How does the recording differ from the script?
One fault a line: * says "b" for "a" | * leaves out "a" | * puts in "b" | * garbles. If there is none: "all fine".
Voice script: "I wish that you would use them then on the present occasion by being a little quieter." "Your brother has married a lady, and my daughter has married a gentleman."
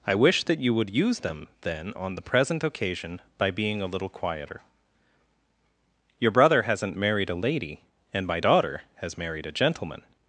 * says "hasn't" for "has"